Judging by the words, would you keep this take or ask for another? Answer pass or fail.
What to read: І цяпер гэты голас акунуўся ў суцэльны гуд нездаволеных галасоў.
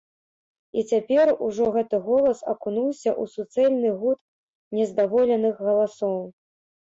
fail